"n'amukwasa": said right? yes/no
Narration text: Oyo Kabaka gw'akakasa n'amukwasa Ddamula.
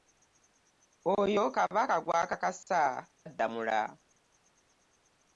no